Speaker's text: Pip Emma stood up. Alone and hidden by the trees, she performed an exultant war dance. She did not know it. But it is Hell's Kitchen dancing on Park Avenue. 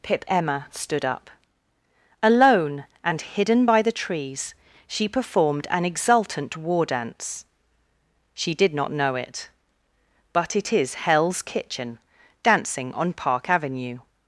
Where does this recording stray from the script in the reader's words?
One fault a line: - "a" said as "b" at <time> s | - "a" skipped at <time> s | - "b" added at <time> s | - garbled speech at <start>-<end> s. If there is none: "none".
none